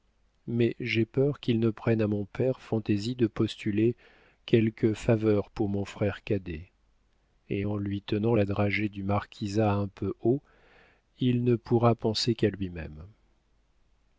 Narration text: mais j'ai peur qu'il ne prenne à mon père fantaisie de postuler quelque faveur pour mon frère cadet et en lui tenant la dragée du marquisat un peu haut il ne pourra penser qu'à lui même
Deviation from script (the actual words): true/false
false